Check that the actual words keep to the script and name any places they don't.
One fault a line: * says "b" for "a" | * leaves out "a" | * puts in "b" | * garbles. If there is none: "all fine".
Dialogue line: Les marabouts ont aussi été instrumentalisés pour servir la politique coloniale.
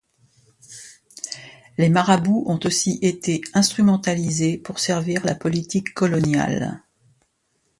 all fine